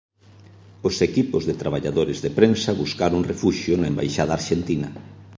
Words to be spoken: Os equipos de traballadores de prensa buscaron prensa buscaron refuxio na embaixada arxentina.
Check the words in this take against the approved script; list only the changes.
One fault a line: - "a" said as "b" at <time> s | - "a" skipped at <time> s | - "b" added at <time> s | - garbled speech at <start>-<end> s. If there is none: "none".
- "prensa buscaron" skipped at 3.3 s